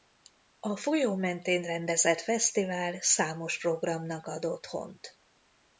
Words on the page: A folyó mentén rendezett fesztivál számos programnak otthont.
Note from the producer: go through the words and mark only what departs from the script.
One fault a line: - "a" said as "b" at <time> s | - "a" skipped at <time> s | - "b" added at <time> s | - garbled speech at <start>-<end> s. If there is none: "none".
- "ad" added at 4.3 s